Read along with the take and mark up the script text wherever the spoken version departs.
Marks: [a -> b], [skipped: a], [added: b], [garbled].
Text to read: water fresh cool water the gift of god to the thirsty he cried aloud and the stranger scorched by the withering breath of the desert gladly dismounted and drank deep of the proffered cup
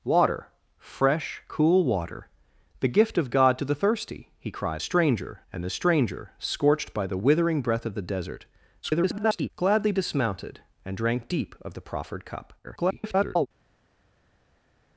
water fresh cool water the gift of god to the thirsty he cried [aloud -> stranger] and the stranger scorched by the withering breath of the desert [garbled] gladly dismounted and drank deep of the proffered cup [garbled]